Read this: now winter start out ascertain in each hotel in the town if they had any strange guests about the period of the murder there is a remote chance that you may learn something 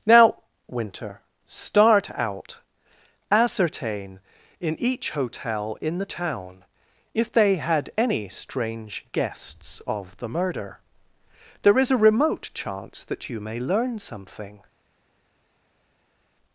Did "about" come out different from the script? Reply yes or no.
yes